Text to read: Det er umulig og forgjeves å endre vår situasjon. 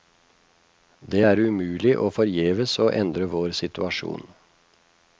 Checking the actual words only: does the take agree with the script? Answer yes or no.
yes